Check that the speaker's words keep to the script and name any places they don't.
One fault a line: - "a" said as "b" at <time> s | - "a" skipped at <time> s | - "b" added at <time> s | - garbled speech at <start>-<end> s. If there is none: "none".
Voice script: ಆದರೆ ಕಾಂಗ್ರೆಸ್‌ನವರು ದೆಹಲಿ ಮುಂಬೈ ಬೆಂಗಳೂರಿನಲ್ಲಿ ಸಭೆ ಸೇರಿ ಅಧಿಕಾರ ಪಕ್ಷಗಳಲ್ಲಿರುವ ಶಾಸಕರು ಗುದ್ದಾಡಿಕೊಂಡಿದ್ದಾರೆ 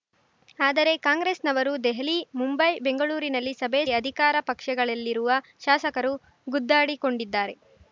- "ಸೇರಿ" skipped at 3.8 s